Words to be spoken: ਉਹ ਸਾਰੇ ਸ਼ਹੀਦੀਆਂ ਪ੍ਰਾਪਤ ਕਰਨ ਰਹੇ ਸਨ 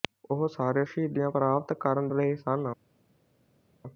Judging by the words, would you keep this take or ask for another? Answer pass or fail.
pass